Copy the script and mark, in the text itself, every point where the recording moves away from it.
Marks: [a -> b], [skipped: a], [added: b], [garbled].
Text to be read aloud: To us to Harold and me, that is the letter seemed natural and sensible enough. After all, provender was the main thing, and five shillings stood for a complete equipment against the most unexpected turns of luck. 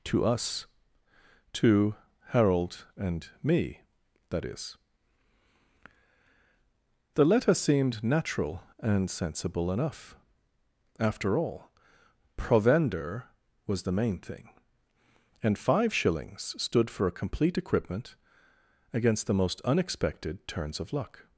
To us to Harold and me, that is the letter seemed natural and sensible enough. After all, provender was the main thing, and five shillings stood for a complete equipment against the most unexpected turns of luck.